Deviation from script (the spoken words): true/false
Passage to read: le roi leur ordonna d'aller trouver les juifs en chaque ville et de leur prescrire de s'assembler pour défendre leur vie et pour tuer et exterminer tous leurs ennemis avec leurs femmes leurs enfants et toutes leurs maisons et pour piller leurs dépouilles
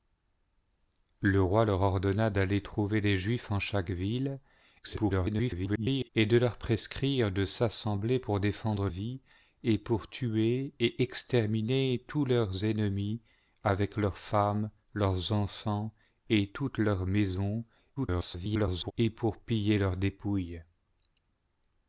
true